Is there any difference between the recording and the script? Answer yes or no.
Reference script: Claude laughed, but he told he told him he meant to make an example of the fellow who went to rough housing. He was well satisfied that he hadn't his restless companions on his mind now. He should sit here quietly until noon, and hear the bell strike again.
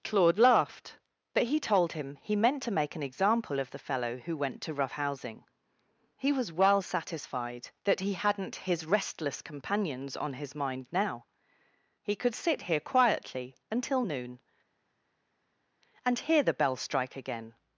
yes